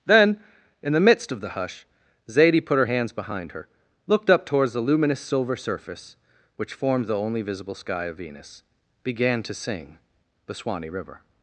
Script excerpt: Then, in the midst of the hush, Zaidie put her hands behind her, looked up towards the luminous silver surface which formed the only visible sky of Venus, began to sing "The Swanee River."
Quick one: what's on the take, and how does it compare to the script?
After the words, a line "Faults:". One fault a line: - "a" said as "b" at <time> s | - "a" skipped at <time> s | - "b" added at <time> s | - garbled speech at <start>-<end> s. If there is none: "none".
Then, in the midst of the hush, Zaidie put her hands behind her, looked up towards the luminous silver surface which formed the only visible sky of Venus, began to sing "The Swanee River."
Faults:
none